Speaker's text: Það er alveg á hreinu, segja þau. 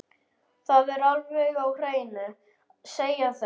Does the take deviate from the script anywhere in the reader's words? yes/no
no